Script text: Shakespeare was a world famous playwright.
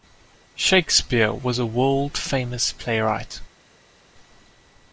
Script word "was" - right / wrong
right